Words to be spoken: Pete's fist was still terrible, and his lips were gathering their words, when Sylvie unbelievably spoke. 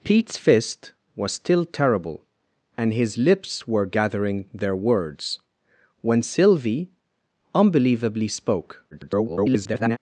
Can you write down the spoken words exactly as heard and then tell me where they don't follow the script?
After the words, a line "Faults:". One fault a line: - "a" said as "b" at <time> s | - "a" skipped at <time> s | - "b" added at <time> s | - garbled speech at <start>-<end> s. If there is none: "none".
Pete's fist was still terrible, and his lips were gathering their words, when Sylvie unbelievably spoke. [garbled]
Faults:
- garbled speech at 8.9-10.0 s